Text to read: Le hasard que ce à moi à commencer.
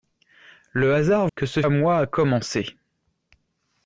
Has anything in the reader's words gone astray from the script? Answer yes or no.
no